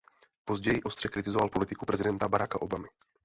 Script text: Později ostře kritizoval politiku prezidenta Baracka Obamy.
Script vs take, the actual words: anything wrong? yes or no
no